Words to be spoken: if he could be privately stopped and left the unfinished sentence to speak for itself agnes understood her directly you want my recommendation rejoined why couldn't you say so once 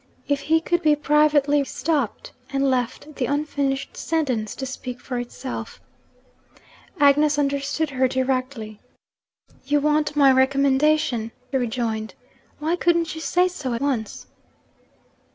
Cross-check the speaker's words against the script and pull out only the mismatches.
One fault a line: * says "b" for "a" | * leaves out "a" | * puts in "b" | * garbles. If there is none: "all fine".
all fine